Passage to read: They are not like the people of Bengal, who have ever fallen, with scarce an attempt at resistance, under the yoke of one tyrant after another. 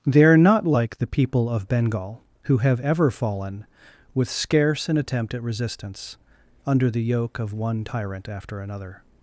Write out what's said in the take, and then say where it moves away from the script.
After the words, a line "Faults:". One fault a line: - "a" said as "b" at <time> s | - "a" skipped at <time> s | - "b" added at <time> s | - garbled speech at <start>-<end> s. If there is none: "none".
They are not like the people of Bengal, who have ever fallen, with scarce an attempt at resistance, under the yoke of one tyrant after another.
Faults:
none